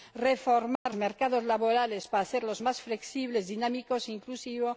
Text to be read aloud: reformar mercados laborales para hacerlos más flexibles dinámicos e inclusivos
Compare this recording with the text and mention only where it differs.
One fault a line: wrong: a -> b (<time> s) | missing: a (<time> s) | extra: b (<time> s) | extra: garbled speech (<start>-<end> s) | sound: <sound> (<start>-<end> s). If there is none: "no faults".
sound: dropout (0.8-0.9 s)